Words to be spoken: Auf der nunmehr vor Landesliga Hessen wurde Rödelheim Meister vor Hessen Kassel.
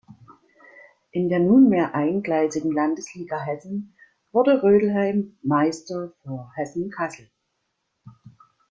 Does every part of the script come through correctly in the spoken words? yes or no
no